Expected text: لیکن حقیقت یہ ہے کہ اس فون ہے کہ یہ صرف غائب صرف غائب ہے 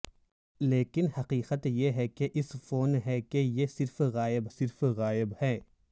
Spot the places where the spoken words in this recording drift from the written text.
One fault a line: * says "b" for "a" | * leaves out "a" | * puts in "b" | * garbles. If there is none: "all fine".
all fine